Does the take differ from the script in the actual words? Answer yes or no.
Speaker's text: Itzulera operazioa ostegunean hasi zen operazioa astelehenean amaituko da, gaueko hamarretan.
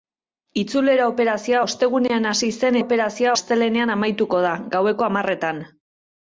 no